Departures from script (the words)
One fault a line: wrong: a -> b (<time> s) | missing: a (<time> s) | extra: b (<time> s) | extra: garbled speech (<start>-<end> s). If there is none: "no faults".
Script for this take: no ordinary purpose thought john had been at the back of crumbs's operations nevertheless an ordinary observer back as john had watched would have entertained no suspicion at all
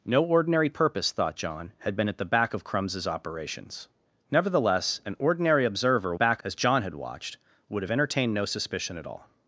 no faults